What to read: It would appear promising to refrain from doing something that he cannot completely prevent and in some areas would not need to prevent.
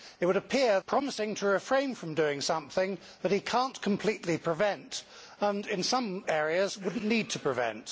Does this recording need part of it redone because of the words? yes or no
no